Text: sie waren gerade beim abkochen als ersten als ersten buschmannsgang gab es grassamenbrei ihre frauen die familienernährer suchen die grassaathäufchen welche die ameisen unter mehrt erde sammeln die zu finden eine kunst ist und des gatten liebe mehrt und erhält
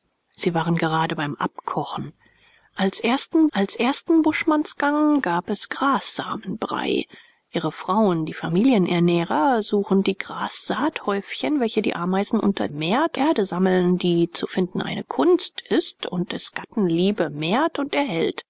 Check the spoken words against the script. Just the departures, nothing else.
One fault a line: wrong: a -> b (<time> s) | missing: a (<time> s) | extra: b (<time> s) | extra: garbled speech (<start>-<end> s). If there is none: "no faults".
no faults